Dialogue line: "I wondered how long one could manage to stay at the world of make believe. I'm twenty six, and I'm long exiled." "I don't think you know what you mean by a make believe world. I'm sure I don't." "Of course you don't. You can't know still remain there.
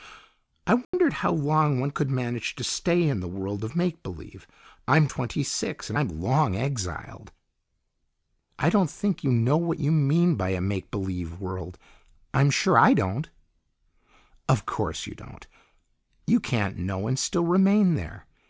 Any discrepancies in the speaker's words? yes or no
yes